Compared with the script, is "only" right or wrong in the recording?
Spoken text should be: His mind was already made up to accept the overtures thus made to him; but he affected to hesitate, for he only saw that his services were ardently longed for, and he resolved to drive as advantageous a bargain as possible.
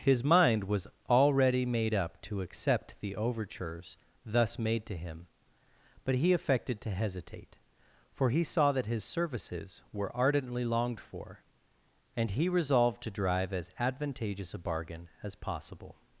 wrong